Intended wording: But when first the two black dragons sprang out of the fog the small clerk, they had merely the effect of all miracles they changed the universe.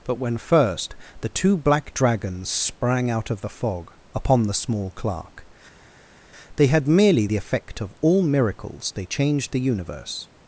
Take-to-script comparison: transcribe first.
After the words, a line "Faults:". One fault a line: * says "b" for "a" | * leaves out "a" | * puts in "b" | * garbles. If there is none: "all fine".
But when first the two black dragons sprang out of the fog upon the small clerk, they had merely the effect of all miracles they changed the universe.
Faults:
* puts in "upon"